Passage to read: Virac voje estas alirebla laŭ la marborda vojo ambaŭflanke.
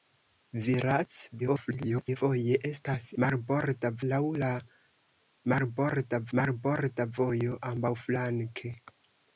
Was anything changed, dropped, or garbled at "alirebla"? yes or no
yes